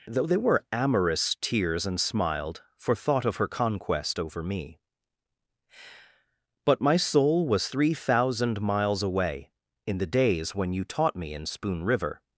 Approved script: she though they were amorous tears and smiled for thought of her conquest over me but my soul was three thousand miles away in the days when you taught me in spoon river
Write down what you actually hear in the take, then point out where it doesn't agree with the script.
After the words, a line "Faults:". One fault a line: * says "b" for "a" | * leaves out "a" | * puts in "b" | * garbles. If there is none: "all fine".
though they were amorous tears and smiled for thought of her conquest over me but my soul was three thousand miles away in the days when you taught me in spoon river
Faults:
* leaves out "she"